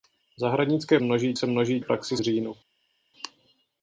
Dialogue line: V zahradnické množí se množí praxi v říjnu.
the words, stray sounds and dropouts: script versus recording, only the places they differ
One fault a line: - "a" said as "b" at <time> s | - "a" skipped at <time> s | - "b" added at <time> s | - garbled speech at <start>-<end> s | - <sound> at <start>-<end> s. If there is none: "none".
none